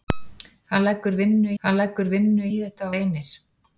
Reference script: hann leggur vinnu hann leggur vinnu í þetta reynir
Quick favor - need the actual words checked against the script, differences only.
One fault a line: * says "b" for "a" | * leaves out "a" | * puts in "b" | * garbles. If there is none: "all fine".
all fine